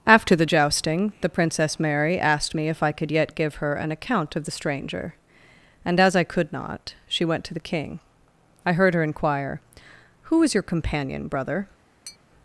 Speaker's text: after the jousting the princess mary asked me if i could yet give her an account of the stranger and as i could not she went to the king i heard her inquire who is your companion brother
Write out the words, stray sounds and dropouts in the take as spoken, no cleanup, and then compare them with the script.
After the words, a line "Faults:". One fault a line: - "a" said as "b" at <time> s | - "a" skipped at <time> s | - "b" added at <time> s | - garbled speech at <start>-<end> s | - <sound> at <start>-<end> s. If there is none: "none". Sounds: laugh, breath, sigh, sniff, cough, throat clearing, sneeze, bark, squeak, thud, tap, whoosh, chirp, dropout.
after the jousting the princess mary asked me if i could yet give her an account of the stranger and as i could not she went to the king i heard her inquire who is your companion brother
Faults:
- tap at 12.1-12.2 s